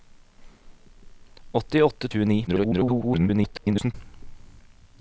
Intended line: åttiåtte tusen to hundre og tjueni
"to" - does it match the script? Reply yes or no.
no